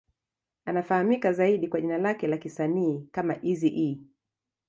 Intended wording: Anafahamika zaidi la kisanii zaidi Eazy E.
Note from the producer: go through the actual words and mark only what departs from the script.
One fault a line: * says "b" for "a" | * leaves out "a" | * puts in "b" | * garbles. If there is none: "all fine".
* puts in "kwa jina lake"
* says "kama" for "zaidi"